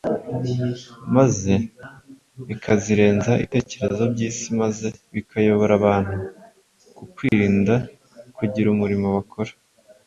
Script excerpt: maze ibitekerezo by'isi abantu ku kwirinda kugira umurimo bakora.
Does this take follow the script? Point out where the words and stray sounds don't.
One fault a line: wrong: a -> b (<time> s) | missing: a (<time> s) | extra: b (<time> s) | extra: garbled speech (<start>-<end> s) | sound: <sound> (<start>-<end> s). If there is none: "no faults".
extra: bikazirenza (2.5 s)
extra: maze bikayobora (4.6 s)
sound: dropout (7.3-7.3 s)